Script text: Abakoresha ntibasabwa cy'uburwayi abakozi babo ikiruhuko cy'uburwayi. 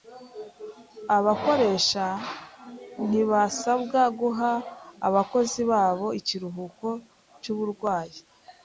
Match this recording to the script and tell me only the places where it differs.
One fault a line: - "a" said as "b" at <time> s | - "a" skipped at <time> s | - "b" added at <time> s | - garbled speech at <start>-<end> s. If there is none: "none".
- "cy'uburwayi" said as "guha" at 4.2 s